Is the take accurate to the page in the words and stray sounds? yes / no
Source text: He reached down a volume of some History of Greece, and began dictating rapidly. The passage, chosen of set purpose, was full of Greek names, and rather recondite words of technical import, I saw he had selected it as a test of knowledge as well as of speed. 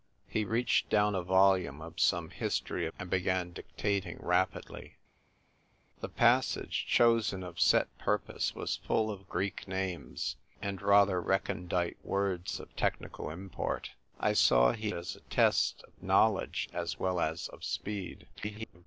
no